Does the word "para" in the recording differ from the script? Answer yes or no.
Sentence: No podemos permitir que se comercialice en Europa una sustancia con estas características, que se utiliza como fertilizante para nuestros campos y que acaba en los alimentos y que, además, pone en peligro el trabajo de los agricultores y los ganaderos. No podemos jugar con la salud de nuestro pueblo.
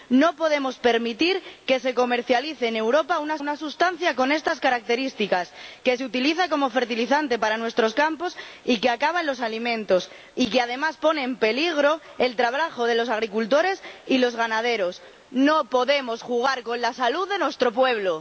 no